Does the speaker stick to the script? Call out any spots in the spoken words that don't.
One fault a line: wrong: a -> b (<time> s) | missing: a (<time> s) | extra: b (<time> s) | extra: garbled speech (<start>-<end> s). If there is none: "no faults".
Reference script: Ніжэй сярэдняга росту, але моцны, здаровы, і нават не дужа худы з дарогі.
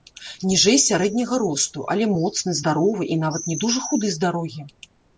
no faults